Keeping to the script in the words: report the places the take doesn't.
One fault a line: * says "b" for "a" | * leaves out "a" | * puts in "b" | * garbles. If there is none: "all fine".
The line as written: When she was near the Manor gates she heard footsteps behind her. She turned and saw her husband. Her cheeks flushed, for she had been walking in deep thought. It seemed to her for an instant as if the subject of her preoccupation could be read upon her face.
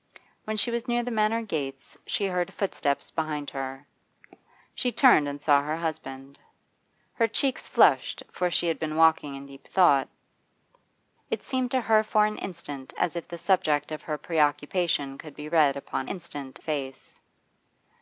* says "instant" for "her"